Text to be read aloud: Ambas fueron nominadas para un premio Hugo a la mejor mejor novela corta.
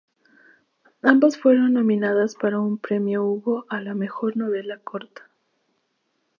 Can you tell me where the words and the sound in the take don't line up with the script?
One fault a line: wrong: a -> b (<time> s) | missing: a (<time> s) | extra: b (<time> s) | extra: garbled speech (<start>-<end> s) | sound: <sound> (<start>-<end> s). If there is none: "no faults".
missing: mejor (4.3 s)